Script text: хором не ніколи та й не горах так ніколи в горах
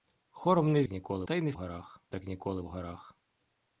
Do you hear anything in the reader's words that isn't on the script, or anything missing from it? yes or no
no